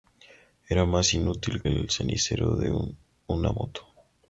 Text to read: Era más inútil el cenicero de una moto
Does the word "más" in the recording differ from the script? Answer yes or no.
no